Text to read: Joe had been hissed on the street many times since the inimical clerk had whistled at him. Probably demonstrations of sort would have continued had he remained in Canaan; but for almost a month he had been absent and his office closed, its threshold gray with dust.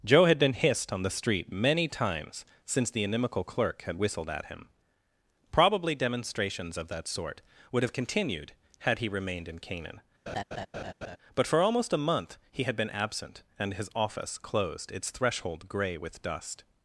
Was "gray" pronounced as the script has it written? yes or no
yes